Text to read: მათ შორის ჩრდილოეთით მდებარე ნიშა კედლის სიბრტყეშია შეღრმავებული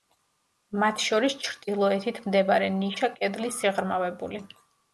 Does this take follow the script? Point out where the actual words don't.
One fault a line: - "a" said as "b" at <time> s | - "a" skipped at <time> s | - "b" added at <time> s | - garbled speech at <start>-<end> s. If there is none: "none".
- "სიბრტყეშია" skipped at 3.6 s